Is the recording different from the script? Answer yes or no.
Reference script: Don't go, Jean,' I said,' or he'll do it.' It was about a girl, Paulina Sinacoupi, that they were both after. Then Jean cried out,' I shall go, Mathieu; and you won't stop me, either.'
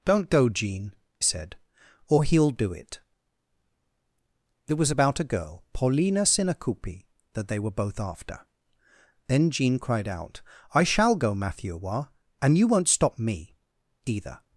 yes